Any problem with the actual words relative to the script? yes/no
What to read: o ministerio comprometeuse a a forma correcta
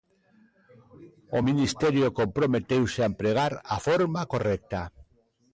yes